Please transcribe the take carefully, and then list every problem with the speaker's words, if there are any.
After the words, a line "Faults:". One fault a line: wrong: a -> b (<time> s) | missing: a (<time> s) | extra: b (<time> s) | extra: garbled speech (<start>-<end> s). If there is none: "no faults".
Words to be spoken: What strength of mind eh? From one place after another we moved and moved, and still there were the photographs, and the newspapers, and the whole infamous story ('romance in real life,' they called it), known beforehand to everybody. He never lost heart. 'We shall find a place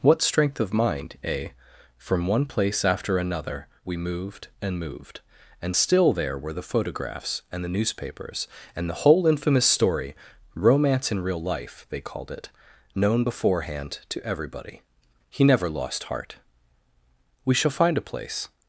What strength of mind eh? From one place after another we moved and moved, and still there were the photographs, and the newspapers, and the whole infamous story ('romance in real life,' they called it), known beforehand to everybody. He never lost heart. 'We shall find a place
Faults:
no faults